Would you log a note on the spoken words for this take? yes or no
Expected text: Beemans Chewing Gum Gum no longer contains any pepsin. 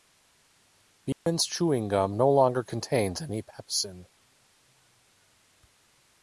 yes